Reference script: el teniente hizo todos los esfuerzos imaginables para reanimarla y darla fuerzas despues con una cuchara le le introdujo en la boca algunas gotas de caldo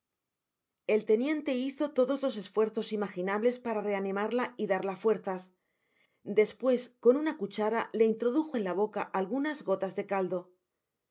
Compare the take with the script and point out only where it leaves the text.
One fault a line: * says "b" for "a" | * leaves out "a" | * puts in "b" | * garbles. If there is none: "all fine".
* leaves out "le"